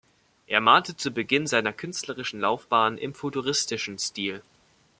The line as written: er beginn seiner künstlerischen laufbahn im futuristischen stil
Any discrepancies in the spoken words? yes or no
yes